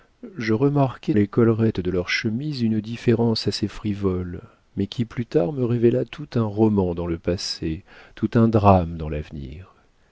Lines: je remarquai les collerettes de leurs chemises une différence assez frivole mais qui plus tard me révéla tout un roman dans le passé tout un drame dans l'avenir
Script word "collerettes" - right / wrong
right